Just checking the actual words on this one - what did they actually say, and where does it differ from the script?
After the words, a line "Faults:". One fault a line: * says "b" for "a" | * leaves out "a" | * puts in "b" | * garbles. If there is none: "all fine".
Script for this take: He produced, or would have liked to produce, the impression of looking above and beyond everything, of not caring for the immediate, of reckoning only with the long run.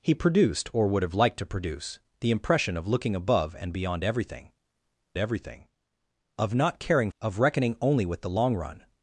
He produced, or would have liked to produce, the impression of looking above and beyond everything everything, of not caring of reckoning only with the long run.
Faults:
* puts in "everything"
* leaves out "for the immediate"